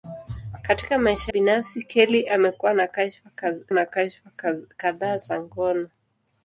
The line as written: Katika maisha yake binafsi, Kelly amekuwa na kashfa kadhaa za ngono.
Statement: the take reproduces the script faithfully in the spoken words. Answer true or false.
false